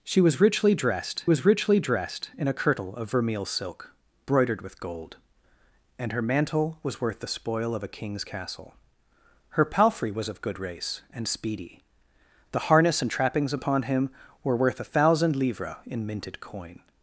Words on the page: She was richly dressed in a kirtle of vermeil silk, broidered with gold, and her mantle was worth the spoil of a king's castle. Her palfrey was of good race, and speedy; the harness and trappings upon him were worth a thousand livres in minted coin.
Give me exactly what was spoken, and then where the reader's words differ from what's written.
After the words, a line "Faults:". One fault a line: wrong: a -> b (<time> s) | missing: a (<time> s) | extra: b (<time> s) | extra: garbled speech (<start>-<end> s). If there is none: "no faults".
She was richly dressed was richly dressed in a kirtle of vermeil silk, broidered with gold, and her mantle was worth the spoil of a king's castle. Her palfrey was of good race, and speedy; the harness and trappings upon him were worth a thousand livres in minted coin.
Faults:
extra: was richly dressed (1.3 s)